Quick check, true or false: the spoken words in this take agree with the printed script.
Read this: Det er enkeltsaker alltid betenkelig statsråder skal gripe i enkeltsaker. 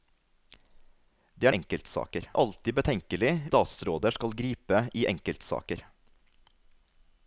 true